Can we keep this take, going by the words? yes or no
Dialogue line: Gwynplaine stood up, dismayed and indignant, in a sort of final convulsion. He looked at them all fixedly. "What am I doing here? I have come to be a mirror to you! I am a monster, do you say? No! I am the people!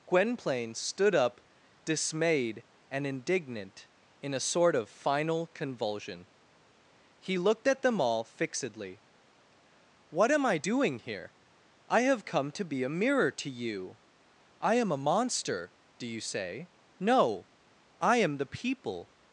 yes